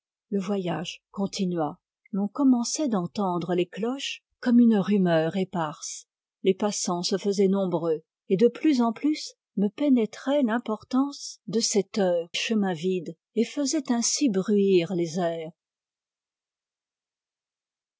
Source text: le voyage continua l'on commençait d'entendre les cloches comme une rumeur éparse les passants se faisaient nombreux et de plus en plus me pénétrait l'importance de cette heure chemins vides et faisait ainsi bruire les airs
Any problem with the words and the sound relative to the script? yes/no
no